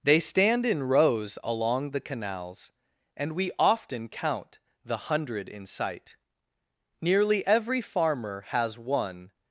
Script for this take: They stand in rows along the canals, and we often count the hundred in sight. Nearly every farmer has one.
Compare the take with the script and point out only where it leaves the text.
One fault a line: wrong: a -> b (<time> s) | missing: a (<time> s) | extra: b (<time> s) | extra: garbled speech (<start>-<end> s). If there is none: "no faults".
no faults